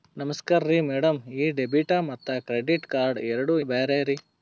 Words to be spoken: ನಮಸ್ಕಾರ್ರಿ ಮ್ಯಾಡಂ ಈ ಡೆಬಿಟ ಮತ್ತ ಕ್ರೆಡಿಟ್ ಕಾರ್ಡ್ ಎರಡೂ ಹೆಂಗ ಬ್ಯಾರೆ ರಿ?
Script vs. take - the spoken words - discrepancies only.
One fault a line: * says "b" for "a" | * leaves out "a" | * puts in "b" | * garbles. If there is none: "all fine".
* leaves out "ಹೆಂಗ"